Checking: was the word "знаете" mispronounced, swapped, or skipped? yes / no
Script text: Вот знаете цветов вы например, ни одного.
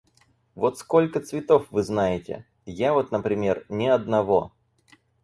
yes